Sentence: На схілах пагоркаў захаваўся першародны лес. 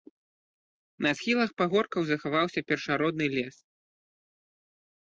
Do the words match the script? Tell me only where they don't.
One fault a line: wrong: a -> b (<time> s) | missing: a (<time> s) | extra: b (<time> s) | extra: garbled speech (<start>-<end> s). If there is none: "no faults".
no faults